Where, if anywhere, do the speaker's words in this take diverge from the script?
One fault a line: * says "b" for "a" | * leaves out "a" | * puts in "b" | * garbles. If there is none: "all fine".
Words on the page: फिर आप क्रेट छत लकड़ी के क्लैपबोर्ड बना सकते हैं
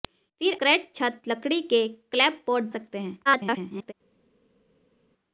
* leaves out "आप"
* leaves out "बना"
* garbles